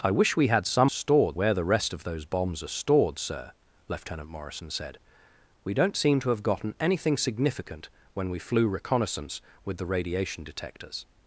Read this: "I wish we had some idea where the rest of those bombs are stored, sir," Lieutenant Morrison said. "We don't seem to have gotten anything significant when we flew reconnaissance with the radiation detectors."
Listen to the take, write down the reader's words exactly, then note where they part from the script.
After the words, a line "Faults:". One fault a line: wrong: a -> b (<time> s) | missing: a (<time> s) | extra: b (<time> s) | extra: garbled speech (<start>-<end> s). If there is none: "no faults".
"I wish we had some stored where the rest of those bombs are stored, sir," Lieutenant Morrison said. "We don't seem to have gotten anything significant when we flew reconnaissance with the radiation detectors."
Faults:
wrong: idea -> stored (0.9 s)